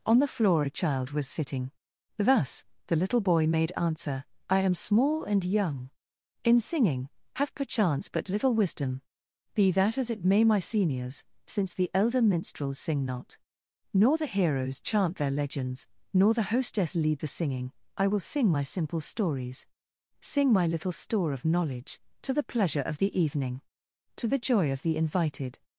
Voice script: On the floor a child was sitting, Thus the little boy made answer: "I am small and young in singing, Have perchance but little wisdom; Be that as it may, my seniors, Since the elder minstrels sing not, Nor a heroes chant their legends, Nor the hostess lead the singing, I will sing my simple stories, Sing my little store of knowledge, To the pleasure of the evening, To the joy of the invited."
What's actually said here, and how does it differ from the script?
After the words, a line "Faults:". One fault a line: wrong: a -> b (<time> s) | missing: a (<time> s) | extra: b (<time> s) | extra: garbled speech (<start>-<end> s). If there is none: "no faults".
On the floor a child was sitting, Thus the little boy made answer: "I am small and young in singing, Have perchance but little wisdom; Be that as it may, my seniors, Since the elder minstrels sing not, Nor the heroes chant their legends, Nor the hostess lead the singing, I will sing my simple stories, Sing my little store of knowledge, To the pleasure of the evening, To the joy of the invited."
Faults:
wrong: a -> the (14.2 s)